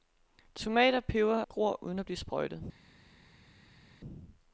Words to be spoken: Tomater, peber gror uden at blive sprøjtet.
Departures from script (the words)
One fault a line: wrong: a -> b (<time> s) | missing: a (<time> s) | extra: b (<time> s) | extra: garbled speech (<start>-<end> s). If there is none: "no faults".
no faults